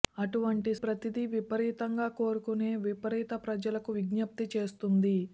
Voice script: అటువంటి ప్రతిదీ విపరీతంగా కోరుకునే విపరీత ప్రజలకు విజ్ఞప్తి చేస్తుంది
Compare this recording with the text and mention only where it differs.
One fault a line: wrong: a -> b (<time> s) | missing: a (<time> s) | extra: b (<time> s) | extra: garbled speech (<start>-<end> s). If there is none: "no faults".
no faults